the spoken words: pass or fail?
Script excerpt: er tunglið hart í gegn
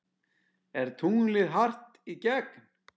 pass